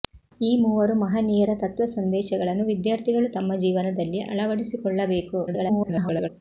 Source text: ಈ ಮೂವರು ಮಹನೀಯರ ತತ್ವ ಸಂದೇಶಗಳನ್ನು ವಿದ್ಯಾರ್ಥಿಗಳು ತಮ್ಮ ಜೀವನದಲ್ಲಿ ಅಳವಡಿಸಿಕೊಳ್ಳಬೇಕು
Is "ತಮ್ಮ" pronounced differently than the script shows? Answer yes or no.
no